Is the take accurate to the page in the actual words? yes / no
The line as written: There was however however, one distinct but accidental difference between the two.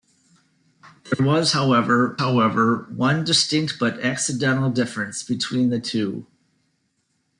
yes